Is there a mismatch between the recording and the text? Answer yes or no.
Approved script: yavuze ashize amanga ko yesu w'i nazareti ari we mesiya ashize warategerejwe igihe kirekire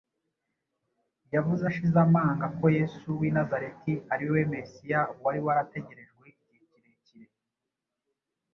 yes